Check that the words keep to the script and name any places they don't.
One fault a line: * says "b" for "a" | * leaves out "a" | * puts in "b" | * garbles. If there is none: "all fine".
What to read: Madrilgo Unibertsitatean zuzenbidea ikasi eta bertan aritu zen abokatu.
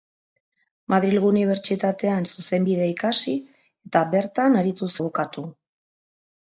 * leaves out "zen"